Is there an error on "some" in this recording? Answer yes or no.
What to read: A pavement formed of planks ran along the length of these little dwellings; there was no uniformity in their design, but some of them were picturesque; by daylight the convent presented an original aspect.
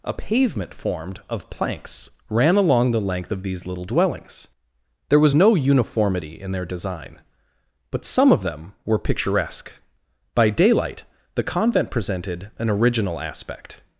no